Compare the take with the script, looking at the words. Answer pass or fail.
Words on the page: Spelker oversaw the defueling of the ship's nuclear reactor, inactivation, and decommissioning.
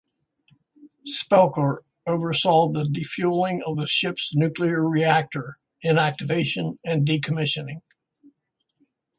pass